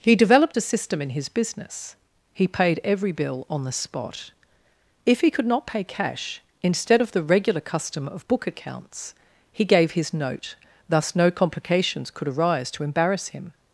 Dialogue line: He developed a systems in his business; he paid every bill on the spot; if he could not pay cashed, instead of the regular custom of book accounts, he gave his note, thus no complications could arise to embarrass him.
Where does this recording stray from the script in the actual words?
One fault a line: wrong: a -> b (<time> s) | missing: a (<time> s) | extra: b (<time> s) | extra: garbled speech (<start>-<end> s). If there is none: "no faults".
wrong: systems -> system (0.6 s)
wrong: cashed -> cash (5.8 s)